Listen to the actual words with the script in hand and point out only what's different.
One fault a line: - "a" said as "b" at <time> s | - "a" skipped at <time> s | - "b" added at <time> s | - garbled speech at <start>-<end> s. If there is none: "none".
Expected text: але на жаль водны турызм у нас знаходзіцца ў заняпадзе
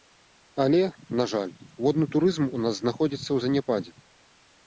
none